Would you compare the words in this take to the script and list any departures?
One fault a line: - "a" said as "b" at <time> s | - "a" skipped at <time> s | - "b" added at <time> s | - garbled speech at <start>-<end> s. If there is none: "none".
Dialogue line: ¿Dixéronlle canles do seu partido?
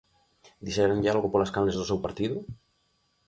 - "algo polas" added at 1.1 s